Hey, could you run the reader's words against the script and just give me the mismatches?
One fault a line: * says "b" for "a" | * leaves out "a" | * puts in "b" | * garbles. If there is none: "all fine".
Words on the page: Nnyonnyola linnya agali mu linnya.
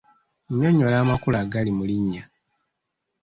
* says "amakulu" for "linnya"